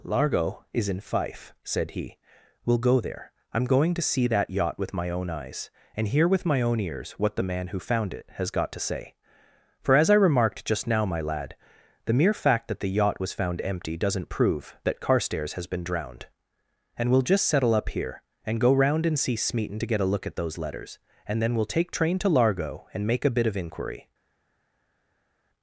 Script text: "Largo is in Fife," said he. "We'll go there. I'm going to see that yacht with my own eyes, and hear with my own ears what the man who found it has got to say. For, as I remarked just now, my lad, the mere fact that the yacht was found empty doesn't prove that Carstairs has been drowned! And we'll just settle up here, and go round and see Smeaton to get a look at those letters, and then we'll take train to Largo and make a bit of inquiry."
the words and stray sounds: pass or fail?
pass